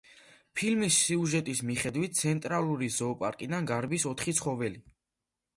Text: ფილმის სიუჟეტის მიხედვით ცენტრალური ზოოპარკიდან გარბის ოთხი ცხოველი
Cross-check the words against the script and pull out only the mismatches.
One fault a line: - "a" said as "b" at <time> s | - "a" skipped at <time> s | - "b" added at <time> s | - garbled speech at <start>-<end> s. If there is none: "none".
none